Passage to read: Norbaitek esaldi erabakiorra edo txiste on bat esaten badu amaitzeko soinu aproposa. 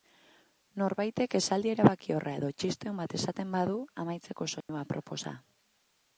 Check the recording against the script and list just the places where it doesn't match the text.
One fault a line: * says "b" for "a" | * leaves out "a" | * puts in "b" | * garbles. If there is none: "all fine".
all fine